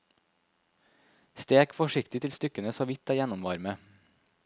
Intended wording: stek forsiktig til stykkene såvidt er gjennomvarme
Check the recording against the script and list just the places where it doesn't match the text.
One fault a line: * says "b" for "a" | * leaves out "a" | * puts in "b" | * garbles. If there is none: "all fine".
all fine